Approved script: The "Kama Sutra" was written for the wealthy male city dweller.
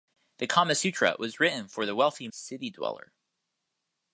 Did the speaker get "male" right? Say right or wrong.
wrong